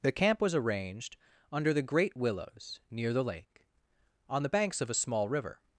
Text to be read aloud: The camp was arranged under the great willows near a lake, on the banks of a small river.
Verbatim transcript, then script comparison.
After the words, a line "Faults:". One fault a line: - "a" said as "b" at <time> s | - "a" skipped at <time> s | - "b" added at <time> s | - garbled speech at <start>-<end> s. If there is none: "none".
The camp was arranged under the great willows near the lake, on the banks of a small river.
Faults:
- "a" said as "the" at 3.1 s